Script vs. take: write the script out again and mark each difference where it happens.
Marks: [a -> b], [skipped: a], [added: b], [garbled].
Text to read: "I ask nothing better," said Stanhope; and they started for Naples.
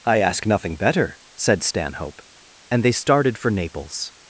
"I ask nothing better," said Stanhope; and they started for Naples.